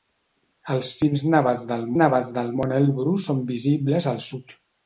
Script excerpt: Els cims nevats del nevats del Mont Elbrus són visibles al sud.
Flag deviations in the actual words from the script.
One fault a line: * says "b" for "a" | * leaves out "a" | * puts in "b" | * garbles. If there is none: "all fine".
all fine